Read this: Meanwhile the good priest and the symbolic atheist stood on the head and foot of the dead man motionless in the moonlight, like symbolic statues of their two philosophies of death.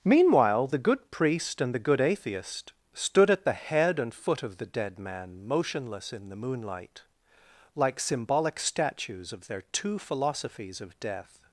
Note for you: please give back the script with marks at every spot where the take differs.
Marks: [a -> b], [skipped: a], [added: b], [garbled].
Meanwhile the good priest and the [symbolic -> good] atheist stood [on -> at] the head and foot of the dead man motionless in the moonlight, like symbolic statues of their two philosophies of death.